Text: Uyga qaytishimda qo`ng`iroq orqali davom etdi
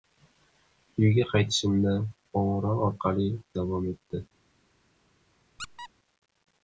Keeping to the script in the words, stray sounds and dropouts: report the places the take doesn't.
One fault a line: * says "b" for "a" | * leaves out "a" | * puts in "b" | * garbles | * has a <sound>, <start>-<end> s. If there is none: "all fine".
* has a squeak, 5.6-5.9 s